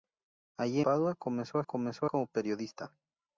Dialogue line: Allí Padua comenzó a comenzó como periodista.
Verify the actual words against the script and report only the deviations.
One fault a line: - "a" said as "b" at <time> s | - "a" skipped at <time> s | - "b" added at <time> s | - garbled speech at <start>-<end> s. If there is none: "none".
none